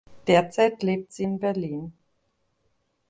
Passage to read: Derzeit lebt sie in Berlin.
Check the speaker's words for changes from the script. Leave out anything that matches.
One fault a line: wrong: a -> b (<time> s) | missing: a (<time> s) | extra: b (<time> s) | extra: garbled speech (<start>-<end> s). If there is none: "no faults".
no faults